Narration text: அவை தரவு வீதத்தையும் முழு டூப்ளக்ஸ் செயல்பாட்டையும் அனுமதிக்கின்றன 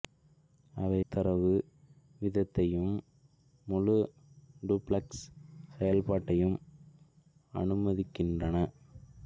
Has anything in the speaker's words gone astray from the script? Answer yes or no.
no